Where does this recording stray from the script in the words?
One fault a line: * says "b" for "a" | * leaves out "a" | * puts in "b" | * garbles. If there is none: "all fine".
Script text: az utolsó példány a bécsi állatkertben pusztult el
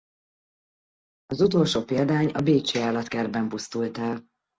all fine